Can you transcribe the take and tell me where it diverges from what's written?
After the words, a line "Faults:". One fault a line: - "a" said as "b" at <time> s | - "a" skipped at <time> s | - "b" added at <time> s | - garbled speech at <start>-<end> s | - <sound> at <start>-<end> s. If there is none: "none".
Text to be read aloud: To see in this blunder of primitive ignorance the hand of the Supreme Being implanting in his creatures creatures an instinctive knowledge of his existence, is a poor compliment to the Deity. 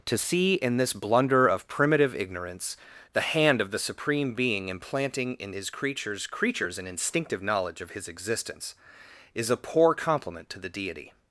To see in this blunder of primitive ignorance the hand of the Supreme Being implanting in his creatures creatures an instinctive knowledge of his existence, is a poor compliment to the Deity.
Faults:
none